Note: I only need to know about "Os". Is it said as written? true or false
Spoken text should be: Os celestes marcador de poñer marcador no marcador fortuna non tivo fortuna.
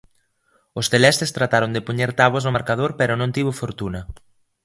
true